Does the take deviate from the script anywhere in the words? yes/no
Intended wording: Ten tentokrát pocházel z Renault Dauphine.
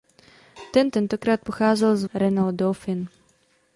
no